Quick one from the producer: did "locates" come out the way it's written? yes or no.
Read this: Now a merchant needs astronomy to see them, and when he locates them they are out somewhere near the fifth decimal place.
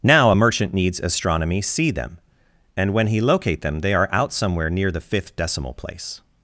no